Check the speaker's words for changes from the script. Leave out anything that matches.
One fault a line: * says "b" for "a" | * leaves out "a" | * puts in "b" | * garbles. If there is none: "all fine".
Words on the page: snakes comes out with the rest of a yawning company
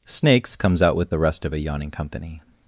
all fine